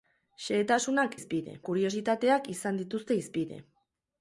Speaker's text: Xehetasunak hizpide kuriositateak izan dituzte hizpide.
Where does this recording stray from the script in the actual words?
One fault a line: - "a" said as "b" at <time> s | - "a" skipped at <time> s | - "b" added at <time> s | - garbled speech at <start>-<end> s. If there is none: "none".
none